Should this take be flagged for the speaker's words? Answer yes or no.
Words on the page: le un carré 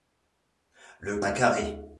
no